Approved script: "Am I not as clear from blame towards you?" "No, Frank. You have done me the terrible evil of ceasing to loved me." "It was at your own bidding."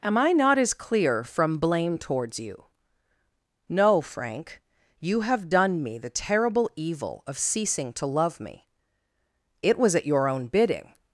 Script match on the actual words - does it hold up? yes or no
no